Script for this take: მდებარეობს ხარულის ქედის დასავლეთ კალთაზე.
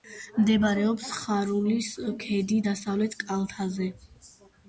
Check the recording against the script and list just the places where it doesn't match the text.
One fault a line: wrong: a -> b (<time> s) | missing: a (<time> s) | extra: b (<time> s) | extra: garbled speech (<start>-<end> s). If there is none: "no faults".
no faults